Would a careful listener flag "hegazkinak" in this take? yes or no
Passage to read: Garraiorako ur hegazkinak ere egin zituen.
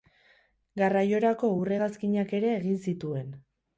no